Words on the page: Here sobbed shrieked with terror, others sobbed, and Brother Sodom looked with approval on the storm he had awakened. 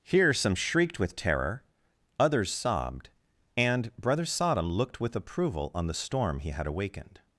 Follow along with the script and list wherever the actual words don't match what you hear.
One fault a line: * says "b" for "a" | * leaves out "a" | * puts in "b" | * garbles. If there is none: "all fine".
* says "some" for "sobbed"